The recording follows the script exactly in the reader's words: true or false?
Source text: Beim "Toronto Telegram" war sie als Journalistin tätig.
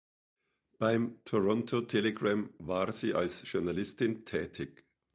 true